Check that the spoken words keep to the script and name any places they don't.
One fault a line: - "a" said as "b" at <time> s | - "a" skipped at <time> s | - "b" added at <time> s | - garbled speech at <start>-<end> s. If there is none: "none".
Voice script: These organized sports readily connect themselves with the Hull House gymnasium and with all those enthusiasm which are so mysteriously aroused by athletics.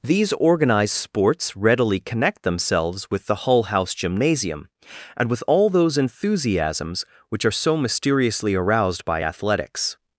- "enthusiasm" said as "enthusiasms" at 6.0 s